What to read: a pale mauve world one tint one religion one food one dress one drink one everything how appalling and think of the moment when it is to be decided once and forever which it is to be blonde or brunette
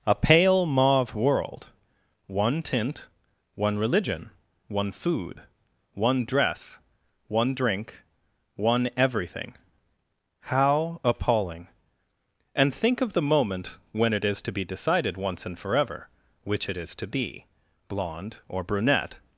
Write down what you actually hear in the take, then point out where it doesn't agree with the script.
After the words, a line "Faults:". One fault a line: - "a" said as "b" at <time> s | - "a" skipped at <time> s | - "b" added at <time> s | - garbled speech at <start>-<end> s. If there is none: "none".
a pale mauve world one tint one religion one food one dress one drink one everything how appalling and think of the moment when it is to be decided once and forever which it is to be blonde or brunette
Faults:
none